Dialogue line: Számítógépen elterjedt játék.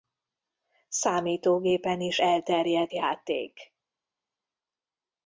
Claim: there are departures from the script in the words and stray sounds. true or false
true